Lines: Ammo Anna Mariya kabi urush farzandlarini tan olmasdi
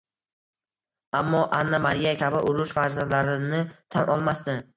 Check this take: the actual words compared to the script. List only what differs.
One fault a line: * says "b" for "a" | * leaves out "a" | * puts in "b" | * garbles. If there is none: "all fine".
all fine